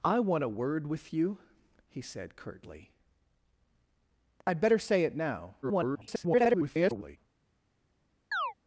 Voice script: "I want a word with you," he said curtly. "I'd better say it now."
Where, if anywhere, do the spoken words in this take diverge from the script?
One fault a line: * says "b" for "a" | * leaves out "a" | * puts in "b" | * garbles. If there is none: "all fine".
* garbles